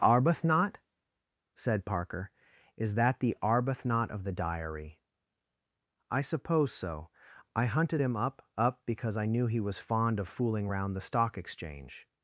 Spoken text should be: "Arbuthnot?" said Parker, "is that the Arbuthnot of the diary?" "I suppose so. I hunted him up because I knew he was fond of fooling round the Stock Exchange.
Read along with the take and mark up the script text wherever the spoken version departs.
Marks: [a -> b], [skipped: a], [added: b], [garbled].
"Arbuthnot?" said Parker, "is that the Arbuthnot of the diary?" "I suppose so. I hunted him up [added: up] because I knew he was fond of fooling round the Stock Exchange.